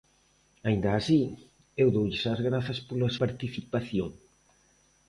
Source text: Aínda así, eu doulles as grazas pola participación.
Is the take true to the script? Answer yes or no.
yes